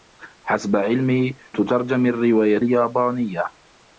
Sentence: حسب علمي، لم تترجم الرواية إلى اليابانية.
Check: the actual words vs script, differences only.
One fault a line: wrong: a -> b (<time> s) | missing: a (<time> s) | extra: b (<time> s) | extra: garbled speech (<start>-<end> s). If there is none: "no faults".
missing: لم (1.4 s)
missing: إلى (2.6 s)